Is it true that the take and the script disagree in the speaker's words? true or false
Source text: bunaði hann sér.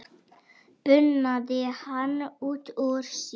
true